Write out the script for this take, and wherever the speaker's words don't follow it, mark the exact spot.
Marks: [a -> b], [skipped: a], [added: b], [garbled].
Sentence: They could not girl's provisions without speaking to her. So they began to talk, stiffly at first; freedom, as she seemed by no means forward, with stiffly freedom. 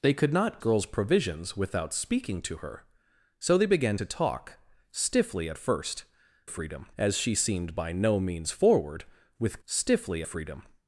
They could not girl's provisions without speaking to her. So they began to talk, stiffly at first; freedom, as she seemed by no means forward, with stiffly freedom.